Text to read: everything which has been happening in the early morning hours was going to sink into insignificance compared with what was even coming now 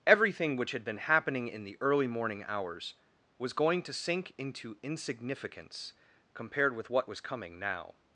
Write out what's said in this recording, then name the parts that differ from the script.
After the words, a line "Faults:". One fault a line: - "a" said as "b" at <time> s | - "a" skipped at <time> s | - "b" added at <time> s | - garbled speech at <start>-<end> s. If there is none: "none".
everything which had been happening in the early morning hours was going to sink into insignificance compared with what was coming now
Faults:
- "has" said as "had" at 0.7 s
- "even" skipped at 7.2 s